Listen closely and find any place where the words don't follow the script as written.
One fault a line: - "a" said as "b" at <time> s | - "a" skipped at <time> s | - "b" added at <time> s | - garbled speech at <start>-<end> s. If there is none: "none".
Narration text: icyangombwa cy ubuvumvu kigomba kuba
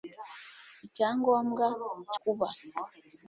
- "ubuvumvu kigomba" skipped at 2.2 s